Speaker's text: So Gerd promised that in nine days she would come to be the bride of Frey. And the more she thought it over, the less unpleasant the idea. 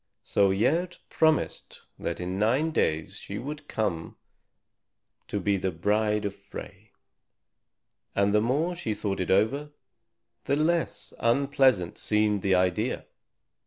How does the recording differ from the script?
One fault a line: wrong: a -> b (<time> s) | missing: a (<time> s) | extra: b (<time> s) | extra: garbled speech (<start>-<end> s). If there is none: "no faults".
extra: seemed (12.0 s)